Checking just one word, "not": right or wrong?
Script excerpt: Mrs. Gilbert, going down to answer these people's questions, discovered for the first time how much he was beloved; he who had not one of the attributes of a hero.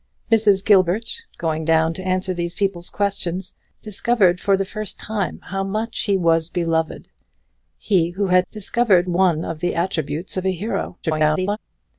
wrong